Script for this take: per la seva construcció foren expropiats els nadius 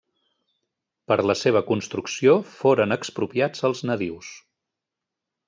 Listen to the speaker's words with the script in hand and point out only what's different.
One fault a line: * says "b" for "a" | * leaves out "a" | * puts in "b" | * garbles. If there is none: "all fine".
all fine